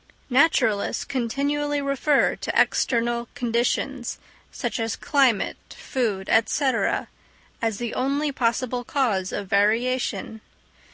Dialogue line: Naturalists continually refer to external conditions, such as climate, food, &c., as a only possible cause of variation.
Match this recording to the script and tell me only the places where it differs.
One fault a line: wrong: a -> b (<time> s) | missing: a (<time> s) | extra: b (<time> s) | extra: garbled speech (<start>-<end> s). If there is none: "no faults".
wrong: a -> the (7.8 s)